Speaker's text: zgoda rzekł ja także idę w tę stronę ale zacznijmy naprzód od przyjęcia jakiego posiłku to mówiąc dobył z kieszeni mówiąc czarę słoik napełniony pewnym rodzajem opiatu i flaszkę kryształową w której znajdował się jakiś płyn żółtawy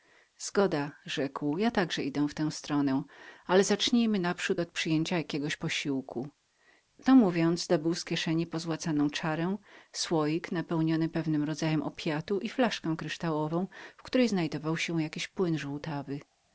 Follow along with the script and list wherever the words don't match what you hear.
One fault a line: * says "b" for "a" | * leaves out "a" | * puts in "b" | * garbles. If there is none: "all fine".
* says "pozłacaną" for "mówiąc"